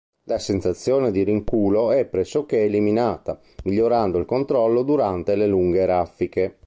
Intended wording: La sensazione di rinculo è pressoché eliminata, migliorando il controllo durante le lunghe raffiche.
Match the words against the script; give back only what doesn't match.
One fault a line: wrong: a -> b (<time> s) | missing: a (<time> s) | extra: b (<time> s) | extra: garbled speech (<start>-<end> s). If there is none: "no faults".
no faults